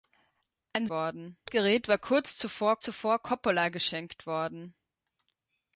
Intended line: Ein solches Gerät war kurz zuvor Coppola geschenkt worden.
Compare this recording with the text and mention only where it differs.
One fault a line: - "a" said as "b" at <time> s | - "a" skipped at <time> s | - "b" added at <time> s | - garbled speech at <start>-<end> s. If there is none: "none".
- "solches" said as "worden" at 0.9 s
- "zuvor" added at 2.8 s